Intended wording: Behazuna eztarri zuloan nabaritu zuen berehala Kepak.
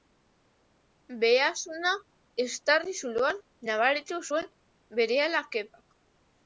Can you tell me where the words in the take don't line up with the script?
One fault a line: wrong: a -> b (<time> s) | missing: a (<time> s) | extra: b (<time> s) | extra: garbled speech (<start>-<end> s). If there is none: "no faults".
no faults